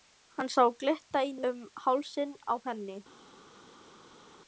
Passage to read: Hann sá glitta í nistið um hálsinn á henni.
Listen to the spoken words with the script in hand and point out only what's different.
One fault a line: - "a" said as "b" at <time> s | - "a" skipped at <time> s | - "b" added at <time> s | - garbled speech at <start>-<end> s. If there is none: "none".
- "nistið" skipped at 1.4 s